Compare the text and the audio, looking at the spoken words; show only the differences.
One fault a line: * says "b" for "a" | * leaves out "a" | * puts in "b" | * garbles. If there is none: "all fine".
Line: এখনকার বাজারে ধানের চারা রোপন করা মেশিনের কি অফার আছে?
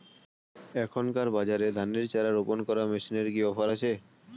all fine